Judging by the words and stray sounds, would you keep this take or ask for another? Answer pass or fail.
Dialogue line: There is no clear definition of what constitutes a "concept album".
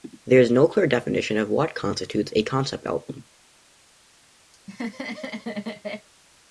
fail